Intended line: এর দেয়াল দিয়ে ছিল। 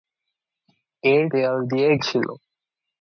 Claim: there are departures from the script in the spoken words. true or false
false